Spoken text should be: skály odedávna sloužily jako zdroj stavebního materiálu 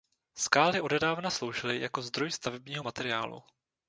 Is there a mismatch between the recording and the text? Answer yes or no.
no